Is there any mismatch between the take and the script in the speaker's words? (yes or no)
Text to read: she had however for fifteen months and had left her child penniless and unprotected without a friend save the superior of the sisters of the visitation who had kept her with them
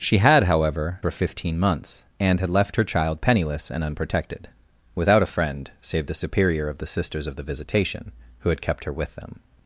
no